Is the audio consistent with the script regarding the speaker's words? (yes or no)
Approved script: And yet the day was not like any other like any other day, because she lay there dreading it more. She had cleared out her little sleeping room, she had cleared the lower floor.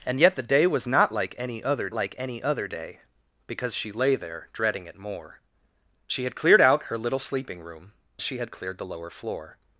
yes